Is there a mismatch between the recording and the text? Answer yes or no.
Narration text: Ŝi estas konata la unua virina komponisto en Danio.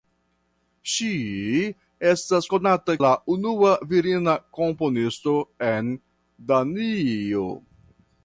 no